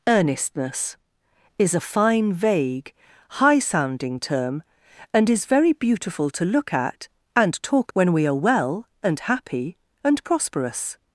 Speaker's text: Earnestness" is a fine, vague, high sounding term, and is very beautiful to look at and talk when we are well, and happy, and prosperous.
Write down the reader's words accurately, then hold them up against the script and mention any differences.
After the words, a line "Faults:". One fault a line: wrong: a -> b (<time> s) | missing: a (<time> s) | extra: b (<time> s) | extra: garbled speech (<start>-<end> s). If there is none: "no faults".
Earnestness" is a fine, vague, high sounding term, and is very beautiful to look at and talk when we are well, and happy, and prosperous.
Faults:
no faults